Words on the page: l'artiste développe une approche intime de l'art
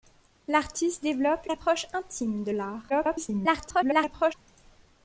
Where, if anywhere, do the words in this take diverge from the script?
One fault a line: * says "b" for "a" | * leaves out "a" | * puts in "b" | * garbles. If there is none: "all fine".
* leaves out "une"
* garbles